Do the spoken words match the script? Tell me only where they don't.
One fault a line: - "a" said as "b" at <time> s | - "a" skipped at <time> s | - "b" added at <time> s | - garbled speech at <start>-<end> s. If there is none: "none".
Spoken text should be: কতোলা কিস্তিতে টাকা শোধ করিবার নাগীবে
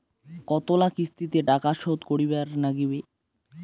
none